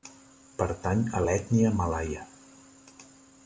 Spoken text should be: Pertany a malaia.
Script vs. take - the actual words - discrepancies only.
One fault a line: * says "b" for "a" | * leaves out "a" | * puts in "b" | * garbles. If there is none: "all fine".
* puts in "l'ètnia"